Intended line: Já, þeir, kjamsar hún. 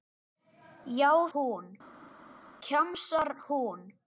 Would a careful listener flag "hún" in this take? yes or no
no